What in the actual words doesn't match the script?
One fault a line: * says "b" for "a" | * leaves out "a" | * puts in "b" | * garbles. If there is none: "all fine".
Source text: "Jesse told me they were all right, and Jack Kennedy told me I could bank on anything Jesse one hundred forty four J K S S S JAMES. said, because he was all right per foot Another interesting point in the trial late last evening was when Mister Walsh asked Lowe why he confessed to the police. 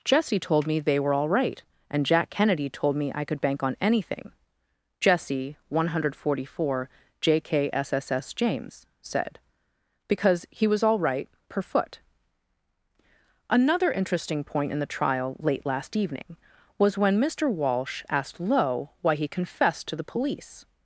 all fine